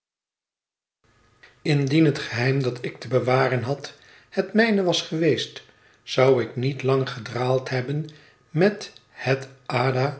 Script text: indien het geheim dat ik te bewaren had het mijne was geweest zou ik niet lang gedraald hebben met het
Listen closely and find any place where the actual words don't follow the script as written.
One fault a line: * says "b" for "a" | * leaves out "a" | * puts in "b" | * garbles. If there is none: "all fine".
all fine